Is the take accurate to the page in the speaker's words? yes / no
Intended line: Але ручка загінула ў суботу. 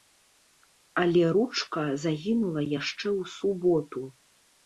no